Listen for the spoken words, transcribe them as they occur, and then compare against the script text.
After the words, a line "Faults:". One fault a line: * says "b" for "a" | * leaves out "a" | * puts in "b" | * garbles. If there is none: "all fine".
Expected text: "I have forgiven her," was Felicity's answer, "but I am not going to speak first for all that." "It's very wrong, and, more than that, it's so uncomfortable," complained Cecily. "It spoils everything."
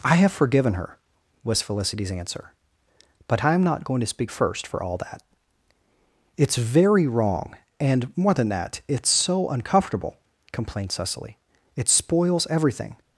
"I have forgiven her," was Felicity's answer, "but I am not going to speak first for all that." "It's very wrong, and, more than that, it's so uncomfortable," complained Cecily. "It spoils everything."
Faults:
all fine